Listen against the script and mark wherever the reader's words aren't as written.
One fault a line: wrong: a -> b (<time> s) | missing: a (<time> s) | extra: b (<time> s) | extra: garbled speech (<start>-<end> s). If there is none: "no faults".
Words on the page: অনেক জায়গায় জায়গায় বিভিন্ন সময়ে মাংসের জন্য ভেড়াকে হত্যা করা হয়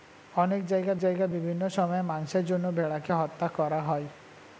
no faults